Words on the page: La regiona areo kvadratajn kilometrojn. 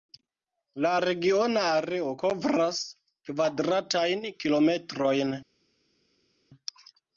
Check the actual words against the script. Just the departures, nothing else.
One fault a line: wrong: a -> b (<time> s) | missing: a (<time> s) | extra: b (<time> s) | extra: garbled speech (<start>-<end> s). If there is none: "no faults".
extra: kovras (2.2 s)